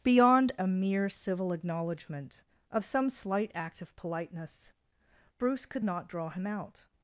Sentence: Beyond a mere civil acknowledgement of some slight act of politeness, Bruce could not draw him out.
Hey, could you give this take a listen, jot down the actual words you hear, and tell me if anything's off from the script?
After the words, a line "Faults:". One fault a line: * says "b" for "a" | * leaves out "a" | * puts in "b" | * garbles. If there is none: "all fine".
Beyond a mere civil acknowledgement of some slight act of politeness, Bruce could not draw him out.
Faults:
all fine